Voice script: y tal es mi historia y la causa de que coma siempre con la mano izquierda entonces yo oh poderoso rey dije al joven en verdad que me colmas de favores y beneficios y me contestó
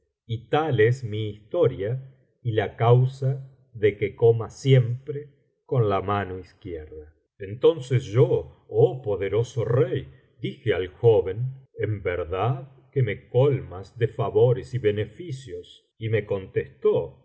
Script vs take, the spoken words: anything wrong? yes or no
no